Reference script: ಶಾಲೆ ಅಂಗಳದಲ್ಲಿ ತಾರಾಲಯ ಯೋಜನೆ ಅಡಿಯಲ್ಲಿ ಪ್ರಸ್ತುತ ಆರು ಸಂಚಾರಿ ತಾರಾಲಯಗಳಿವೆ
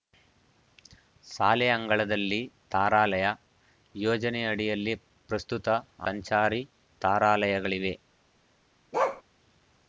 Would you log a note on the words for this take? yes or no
yes